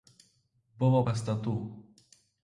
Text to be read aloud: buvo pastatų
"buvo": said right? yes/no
yes